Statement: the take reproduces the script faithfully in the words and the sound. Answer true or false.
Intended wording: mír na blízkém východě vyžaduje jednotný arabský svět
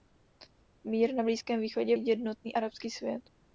false